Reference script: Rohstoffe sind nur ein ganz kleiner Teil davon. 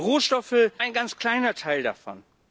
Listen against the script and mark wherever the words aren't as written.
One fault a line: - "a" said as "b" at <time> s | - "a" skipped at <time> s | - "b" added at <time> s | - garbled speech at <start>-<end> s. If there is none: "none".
- "sind nur" skipped at 0.7 s